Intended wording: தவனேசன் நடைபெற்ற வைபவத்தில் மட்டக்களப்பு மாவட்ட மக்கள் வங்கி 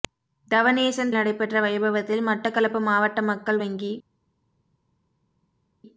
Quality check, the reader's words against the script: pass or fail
pass